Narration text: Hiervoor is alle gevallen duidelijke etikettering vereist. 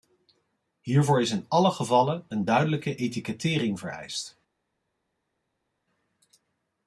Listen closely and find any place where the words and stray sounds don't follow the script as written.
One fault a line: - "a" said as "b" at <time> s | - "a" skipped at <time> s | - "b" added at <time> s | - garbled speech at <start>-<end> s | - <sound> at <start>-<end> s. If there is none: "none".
- "in" added at 1.3 s
- "een" added at 2.3 s